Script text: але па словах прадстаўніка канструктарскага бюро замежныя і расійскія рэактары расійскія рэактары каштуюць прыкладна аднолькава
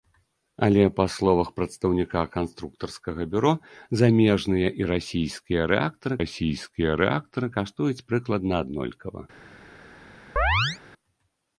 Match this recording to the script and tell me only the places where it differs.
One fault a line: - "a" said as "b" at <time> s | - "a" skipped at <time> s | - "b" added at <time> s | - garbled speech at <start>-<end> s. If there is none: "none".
none